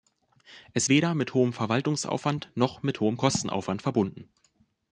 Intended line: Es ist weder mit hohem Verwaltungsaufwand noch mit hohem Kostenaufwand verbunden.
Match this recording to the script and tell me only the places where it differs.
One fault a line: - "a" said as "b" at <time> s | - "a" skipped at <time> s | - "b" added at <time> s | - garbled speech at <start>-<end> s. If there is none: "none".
- "ist" skipped at 0.9 s